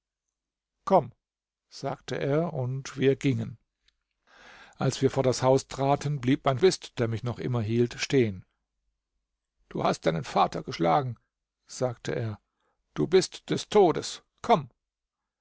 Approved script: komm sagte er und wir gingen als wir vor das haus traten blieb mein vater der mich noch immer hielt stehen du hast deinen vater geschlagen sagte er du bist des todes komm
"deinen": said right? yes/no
yes